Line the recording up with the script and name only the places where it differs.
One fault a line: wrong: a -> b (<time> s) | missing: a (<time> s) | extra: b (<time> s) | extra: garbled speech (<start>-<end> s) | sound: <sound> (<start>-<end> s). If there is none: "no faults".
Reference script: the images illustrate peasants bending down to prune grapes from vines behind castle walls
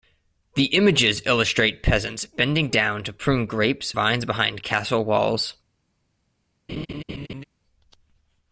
missing: from (3.9 s)
sound: laugh (6.7-7.4 s)